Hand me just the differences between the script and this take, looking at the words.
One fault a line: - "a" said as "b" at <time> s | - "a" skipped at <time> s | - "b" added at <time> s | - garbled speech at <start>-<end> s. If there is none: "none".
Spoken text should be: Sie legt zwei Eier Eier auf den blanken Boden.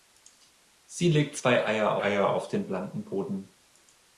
none